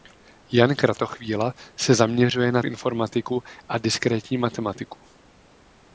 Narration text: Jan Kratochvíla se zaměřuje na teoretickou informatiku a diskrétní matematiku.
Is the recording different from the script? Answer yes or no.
yes